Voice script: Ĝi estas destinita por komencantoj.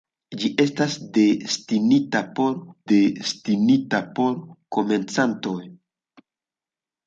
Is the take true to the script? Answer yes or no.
no